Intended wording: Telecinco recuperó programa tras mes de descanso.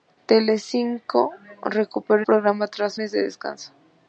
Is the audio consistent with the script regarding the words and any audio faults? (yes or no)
yes